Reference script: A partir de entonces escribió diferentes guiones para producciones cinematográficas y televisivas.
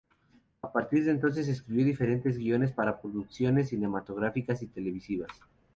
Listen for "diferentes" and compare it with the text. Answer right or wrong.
right